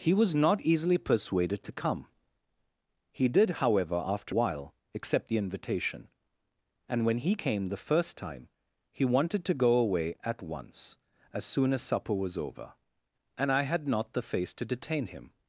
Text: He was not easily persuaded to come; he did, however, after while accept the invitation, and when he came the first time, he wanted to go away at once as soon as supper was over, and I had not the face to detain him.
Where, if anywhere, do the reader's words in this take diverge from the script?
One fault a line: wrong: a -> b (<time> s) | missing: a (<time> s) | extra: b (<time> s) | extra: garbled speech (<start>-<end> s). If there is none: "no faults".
no faults